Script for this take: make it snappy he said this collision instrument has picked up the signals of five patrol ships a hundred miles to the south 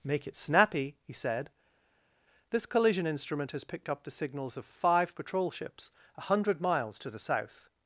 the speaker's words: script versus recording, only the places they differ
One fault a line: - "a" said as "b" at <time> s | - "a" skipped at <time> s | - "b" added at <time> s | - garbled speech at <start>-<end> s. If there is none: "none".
none